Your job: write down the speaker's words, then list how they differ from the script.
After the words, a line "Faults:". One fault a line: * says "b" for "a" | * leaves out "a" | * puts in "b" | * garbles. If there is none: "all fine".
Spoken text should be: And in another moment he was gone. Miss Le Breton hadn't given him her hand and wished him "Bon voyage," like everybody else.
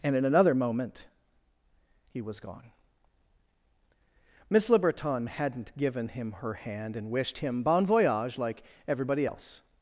And in another moment he was gone. Miss Le Breton hadn't given him her hand and wished him "Bon voyage," like everybody else.
Faults:
all fine